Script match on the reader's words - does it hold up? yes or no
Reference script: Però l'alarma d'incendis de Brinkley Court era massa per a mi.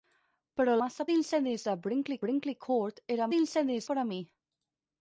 no